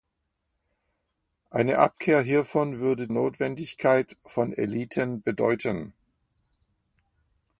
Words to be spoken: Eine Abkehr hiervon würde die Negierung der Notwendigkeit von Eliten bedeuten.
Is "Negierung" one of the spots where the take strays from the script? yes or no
yes